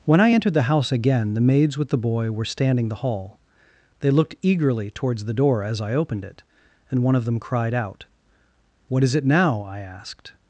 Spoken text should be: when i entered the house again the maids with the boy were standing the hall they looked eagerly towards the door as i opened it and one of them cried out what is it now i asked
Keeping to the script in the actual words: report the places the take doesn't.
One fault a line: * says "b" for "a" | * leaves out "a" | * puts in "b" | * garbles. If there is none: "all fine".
all fine